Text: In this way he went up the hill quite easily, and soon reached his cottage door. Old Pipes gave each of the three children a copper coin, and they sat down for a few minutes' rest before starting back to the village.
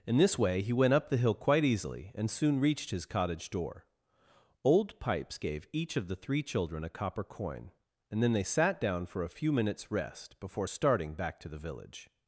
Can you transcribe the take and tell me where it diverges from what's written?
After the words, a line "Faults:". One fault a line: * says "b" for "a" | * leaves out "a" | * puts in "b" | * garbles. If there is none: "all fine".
In this way he went up the hill quite easily, and soon reached his cottage door. Old Pipes gave each of the three children a copper coin, and then they sat down for a few minutes' rest before starting back to the village.
Faults:
* puts in "then"